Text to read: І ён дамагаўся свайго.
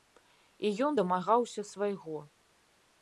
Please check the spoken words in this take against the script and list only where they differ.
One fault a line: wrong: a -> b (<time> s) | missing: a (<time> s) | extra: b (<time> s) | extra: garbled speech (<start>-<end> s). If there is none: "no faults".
no faults